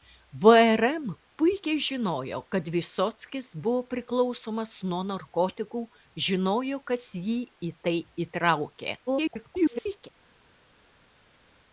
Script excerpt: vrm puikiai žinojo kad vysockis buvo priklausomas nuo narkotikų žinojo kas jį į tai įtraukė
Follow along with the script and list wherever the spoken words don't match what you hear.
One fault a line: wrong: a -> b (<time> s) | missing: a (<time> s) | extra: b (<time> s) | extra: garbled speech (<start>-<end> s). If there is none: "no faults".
extra: garbled speech (9.1-10.1 s)